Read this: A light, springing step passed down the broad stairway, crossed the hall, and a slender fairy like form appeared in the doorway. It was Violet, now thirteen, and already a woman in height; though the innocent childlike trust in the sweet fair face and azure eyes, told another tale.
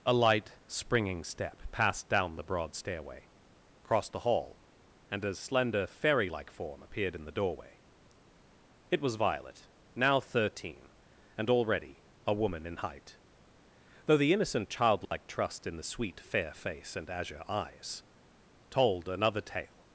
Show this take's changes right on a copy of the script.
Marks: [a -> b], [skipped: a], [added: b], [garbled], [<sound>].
A light, springing step passed down the broad stairway, crossed the hall, and a slender fairy like form appeared in the doorway. It was Violet, now thirteen, and already a woman in height; though the innocent childlike [dropout] trust in the sweet fair face and azure eyes, told another tale.